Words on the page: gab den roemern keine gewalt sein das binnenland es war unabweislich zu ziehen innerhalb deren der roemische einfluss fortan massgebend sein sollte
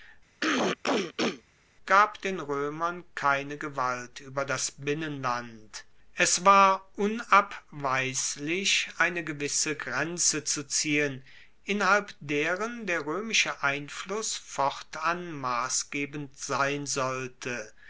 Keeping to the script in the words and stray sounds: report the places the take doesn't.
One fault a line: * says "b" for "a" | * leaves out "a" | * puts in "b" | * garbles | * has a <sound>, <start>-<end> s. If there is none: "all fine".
* has a throat clearing, 0.4-1.4 s
* says "ueber" for "sein"
* puts in "eine gewisse grenze"